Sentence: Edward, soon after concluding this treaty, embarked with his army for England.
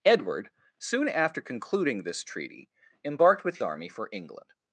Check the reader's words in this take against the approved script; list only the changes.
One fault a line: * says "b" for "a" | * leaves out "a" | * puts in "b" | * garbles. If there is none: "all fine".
* leaves out "his"